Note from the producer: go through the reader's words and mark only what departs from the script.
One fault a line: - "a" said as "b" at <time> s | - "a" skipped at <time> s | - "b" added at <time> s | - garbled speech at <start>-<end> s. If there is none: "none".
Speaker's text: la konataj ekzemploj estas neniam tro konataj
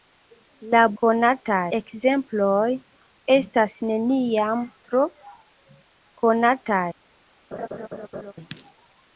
none